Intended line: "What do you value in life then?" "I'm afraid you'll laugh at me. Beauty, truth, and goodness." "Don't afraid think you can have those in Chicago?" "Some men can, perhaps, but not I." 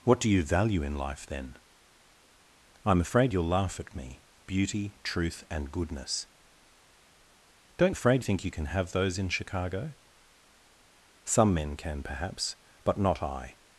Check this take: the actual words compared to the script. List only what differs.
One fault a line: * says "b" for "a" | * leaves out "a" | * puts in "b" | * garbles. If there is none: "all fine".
all fine